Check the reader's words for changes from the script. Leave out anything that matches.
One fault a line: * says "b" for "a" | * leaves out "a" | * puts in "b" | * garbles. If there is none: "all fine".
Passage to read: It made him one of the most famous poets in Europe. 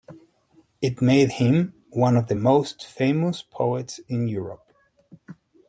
all fine